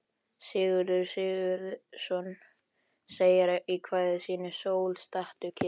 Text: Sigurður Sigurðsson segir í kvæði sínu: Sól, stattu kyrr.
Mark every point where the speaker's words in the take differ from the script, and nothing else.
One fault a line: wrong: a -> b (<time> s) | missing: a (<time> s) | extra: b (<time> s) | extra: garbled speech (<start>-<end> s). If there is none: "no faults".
no faults